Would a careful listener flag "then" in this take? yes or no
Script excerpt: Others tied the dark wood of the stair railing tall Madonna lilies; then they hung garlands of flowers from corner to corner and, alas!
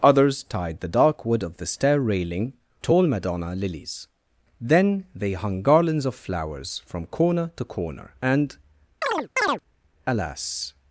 no